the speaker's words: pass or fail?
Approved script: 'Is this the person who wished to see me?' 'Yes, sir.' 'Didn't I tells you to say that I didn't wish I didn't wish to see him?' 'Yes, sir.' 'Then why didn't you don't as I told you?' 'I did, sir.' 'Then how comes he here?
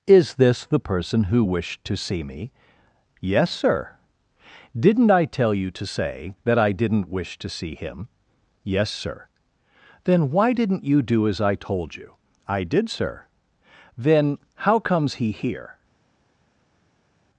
fail